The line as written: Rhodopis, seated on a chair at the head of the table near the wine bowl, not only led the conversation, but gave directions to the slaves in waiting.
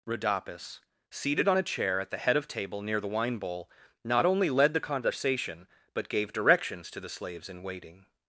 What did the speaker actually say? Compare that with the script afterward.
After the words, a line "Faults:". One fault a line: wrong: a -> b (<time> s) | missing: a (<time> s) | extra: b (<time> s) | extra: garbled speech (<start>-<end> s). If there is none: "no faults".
Rhodopis, seated on a chair at the head of table near the wine bowl, not only led the conversation, but gave directions to the slaves in waiting.
Faults:
missing: the (2.5 s)